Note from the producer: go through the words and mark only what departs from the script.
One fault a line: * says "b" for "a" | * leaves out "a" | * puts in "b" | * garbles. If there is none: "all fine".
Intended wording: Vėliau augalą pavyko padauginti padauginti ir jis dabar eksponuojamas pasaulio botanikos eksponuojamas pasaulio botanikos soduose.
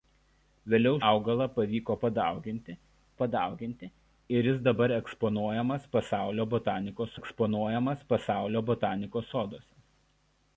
all fine